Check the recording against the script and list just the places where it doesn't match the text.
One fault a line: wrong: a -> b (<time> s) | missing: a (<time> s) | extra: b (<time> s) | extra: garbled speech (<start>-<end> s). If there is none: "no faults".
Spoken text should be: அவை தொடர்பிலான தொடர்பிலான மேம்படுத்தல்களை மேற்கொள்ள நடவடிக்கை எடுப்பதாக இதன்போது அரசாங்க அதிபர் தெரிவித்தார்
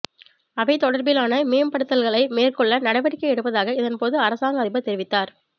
missing: தொடர்பிலான (1.3 s)